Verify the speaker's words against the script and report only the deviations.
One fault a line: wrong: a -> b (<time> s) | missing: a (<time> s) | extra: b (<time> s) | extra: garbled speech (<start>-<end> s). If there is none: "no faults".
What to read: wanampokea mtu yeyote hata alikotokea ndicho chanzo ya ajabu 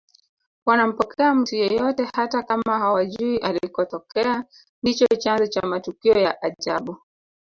extra: kama hawajui (2.4 s)
extra: cha matukio (5.5 s)